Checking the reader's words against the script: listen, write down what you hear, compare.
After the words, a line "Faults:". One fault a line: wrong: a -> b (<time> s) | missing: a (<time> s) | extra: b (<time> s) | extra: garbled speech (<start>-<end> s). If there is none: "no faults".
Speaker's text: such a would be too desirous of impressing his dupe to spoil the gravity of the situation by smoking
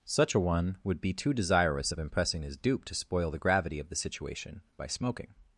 such a one would be too desirous of impressing his dupe to spoil the gravity of the situation by smoking
Faults:
extra: one (0.4 s)